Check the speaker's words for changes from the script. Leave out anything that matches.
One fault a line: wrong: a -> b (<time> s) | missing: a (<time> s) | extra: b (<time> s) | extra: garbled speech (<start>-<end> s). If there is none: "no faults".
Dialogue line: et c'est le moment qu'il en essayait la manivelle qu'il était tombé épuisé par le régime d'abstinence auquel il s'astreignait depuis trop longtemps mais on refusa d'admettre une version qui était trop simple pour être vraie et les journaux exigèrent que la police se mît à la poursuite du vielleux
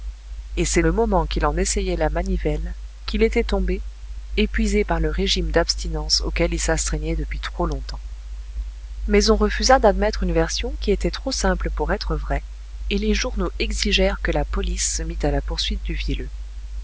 no faults